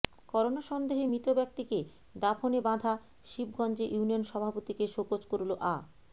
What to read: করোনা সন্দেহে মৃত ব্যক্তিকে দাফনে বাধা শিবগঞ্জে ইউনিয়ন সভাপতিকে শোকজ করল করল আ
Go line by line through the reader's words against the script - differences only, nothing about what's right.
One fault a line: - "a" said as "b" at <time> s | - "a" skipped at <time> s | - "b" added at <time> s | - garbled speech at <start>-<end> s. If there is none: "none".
- "করল" skipped at 5.5 s